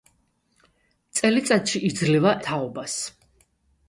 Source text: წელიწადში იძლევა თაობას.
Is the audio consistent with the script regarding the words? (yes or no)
yes